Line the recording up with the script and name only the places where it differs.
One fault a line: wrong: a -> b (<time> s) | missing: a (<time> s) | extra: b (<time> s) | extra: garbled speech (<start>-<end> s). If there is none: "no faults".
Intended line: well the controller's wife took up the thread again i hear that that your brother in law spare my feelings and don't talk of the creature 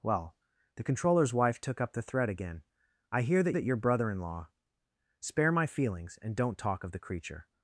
no faults